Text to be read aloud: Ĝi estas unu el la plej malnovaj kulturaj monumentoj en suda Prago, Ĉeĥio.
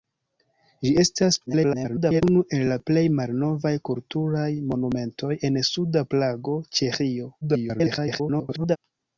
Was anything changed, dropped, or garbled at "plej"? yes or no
no